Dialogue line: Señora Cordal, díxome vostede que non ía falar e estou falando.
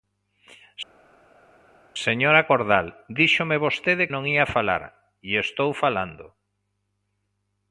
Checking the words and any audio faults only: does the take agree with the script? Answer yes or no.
no